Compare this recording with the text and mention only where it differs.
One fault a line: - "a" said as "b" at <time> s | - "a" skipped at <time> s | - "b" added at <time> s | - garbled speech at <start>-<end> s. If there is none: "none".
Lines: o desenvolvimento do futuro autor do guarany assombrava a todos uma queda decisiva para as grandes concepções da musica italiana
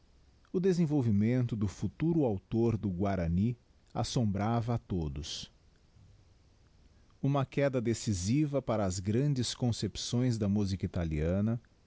none